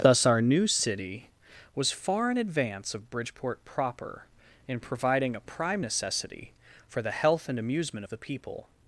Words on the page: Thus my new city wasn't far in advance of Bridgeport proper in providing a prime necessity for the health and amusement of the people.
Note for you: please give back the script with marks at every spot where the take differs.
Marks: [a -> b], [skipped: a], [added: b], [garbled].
Thus [my -> our] new city [wasn't -> was] far in advance of Bridgeport proper in providing a prime necessity for the health and amusement of the people.